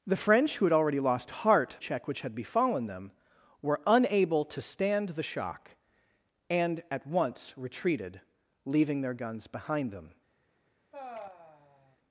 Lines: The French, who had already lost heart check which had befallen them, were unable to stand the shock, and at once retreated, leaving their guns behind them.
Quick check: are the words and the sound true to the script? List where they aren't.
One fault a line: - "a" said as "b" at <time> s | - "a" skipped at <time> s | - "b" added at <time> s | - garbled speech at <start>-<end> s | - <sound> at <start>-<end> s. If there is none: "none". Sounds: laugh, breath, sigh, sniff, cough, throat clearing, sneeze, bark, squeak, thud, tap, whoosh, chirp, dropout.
- sigh at 10.9-12.0 s